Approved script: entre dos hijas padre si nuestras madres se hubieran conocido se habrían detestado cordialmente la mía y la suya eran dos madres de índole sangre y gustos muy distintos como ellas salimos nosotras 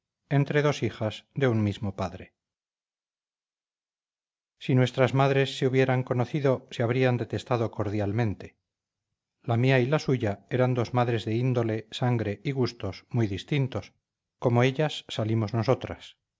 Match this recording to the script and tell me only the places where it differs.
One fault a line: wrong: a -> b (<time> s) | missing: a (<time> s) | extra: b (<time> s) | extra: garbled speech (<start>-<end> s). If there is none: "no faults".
extra: de un mismo (1.4 s)